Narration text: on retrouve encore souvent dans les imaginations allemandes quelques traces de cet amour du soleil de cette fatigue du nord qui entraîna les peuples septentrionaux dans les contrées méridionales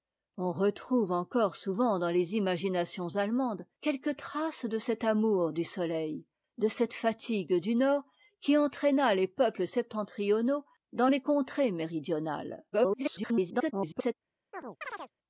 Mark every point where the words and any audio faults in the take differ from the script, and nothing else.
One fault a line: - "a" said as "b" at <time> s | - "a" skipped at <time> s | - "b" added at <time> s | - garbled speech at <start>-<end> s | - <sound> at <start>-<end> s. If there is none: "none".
- garbled speech at 12.7-14.1 s
- chirp at 14.5-15.1 s